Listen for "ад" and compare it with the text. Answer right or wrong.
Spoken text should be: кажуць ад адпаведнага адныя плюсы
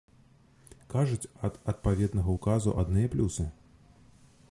right